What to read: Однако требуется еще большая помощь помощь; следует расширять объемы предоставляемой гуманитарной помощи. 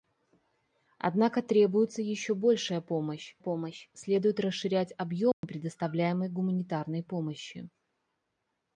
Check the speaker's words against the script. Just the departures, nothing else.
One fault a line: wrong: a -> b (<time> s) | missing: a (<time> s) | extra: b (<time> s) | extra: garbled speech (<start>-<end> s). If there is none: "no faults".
no faults